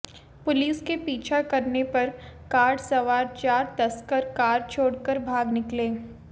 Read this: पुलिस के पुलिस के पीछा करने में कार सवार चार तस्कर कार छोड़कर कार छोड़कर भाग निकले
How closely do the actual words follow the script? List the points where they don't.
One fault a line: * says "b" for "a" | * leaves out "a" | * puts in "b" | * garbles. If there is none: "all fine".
* leaves out "पुलिस के"
* says "पर" for "में"
* leaves out "कार छोड़कर"